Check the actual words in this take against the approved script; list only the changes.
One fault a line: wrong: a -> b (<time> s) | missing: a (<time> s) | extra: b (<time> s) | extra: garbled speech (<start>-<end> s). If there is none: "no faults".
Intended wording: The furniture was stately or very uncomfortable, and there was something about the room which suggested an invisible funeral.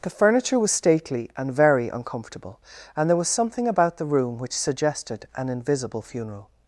wrong: or -> and (1.3 s)